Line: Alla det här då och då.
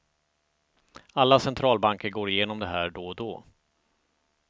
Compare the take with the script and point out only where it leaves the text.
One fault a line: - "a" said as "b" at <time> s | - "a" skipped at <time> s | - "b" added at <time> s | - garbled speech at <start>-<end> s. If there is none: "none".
- "centralbanker går igenom" added at 1.4 s